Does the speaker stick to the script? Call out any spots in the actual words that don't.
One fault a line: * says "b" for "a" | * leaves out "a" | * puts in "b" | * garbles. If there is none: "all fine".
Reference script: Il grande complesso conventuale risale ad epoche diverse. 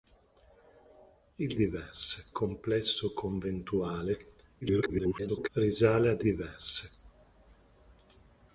* says "diverse" for "grande"
* garbles
* leaves out "epoche"